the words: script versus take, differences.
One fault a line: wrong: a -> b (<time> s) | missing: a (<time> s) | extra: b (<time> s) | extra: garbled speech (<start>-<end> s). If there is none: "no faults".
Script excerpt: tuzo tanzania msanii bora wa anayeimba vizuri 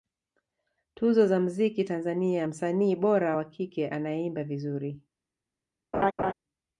extra: za mziki (1.3 s)
extra: kike (3.4 s)